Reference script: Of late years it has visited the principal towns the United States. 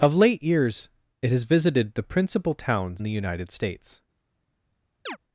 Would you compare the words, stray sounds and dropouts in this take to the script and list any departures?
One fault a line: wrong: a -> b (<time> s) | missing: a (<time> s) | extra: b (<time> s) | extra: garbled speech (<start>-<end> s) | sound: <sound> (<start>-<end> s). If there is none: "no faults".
sound: chirp (5.1-5.2 s)